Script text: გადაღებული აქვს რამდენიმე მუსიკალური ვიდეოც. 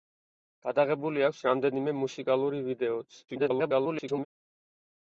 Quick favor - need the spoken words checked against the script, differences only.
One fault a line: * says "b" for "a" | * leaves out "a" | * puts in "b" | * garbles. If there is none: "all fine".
* garbles